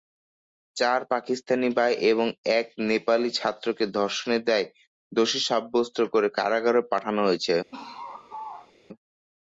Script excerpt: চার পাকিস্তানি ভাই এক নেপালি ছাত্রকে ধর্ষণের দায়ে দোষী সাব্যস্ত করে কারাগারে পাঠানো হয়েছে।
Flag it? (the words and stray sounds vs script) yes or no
yes